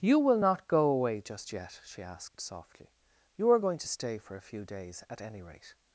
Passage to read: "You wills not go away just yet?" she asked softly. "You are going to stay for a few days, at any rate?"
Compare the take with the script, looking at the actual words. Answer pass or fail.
fail